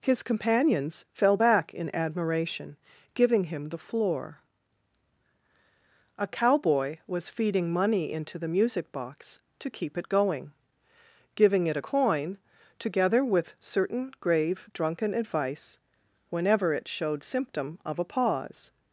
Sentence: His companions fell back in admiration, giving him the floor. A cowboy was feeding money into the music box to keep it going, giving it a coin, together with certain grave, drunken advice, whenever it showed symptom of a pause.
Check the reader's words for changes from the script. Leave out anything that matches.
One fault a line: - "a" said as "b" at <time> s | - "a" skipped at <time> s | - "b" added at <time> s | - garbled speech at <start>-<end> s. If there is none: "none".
none